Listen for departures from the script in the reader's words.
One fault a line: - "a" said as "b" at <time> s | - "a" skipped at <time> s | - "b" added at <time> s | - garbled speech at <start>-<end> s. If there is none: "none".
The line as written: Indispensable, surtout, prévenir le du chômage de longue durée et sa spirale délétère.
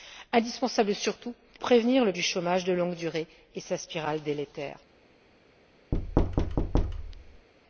none